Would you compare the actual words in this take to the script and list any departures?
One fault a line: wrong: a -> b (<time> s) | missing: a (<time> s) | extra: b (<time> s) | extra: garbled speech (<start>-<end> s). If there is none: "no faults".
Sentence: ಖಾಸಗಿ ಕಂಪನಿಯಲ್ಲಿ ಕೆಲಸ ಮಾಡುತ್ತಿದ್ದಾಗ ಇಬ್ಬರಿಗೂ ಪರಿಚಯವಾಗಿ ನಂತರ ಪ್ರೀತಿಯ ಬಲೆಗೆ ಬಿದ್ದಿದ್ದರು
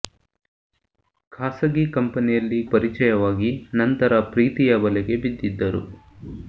missing: ಕೆಲಸ ಮಾಡುತ್ತಿದ್ದಾಗ ಇಬ್ಬರಿಗೂ (2.6 s)